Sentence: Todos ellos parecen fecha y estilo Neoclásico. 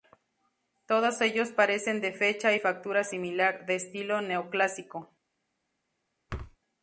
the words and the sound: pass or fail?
fail